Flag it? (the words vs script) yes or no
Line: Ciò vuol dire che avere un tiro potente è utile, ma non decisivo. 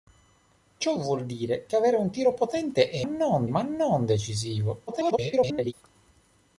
yes